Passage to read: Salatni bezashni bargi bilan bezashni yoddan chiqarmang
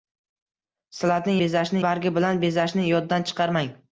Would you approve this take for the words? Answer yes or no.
yes